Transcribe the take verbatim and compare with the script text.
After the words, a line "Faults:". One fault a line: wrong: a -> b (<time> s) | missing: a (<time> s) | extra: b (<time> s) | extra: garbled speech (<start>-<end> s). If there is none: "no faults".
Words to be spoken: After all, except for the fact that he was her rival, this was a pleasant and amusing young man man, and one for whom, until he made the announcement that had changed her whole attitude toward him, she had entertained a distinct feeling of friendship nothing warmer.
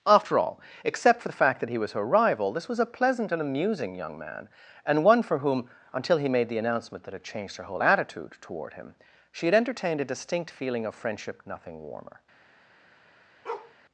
After all, except for the fact that he was her rival, this was a pleasant and amusing young man, and one for whom, until he made the announcement that had changed her whole attitude toward him, she had entertained a distinct feeling of friendship nothing warmer.
Faults:
missing: man (4.5 s)